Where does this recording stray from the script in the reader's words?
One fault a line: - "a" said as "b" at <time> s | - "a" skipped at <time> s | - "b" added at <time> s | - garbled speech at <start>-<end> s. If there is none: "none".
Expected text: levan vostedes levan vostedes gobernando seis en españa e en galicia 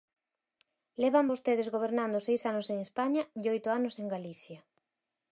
- "levan vostedes" skipped at 1.7 s
- "anos" added at 2.5 s
- "oito anos" added at 3.6 s